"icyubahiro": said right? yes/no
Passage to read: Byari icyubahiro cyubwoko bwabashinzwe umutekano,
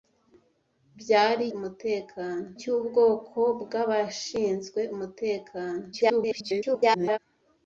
no